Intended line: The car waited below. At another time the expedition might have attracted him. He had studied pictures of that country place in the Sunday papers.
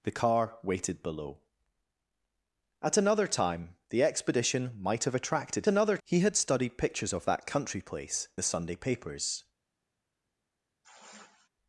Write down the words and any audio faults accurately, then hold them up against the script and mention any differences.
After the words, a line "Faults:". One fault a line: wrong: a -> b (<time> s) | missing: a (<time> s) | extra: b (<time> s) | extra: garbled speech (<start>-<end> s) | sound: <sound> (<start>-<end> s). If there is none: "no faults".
The car waited below. At another time the expedition might have attracted another. He had studied pictures of that country place the Sunday papers.
Faults:
wrong: him -> another (5.7 s)
missing: in (8.3 s)
sound: sigh (10.8-11.5 s)